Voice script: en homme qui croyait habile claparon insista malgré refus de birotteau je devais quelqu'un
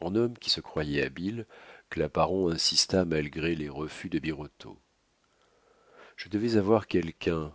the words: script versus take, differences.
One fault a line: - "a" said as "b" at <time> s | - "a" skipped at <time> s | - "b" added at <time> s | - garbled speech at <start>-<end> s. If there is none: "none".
- "se" added at 0.5 s
- "les" added at 3.5 s
- "avoir" added at 6.6 s